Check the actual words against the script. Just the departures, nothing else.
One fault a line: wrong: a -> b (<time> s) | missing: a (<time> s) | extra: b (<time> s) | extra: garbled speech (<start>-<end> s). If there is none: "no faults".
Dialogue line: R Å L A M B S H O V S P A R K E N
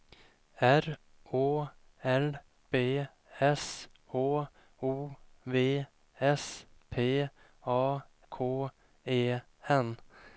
missing: A M (2.4 s)
missing: R (8.0 s)